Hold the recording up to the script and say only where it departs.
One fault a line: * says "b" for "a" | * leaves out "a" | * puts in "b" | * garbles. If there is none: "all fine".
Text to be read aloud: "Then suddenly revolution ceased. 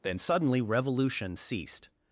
all fine